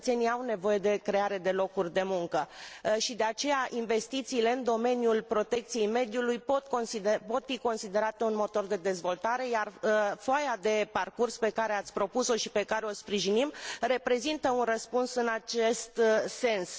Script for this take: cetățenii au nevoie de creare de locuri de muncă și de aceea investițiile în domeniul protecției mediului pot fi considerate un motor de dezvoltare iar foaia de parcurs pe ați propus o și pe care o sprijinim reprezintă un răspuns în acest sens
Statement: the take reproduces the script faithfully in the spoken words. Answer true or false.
false